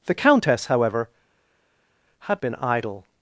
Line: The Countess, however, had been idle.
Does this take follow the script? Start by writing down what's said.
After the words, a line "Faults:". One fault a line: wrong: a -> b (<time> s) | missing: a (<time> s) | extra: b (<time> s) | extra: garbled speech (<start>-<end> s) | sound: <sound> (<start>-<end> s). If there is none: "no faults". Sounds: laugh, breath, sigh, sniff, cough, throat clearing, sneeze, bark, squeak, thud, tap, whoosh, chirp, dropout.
The Countess, however, had been idle.
Faults:
no faults